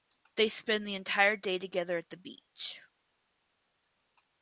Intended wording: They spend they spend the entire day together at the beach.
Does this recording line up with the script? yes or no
no